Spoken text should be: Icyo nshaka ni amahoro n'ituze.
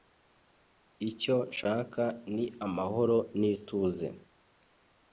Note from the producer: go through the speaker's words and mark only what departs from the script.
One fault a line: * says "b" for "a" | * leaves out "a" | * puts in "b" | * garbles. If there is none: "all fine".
all fine